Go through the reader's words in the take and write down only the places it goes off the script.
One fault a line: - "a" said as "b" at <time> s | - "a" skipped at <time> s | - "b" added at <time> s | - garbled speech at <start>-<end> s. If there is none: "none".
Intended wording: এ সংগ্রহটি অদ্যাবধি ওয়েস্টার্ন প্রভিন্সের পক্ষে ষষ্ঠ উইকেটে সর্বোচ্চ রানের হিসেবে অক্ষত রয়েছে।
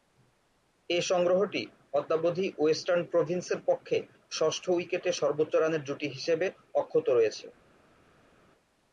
- "জুটি" added at 5.9 s